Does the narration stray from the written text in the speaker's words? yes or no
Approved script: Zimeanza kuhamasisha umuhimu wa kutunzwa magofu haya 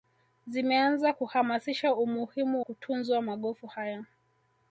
yes